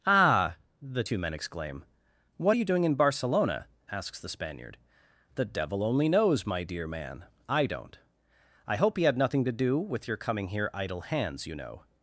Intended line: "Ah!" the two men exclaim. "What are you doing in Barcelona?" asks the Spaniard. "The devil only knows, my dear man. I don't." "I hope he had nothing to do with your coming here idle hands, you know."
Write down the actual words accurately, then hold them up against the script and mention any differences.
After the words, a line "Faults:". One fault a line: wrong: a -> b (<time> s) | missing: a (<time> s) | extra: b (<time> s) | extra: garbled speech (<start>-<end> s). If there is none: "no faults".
"Ah!" the two men exclaim. "What are you doing in Barcelona?" asks the Spaniard. "The devil only knows, my dear man. I don't." "I hope he had nothing to do with your coming here idle hands, you know."
Faults:
no faults